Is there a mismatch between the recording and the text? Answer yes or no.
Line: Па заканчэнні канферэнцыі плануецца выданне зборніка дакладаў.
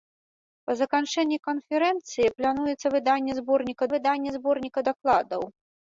yes